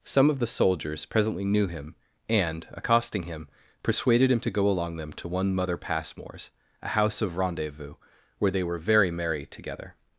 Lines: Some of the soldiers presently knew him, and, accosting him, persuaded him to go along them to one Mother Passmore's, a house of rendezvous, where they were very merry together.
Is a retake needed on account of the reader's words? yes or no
no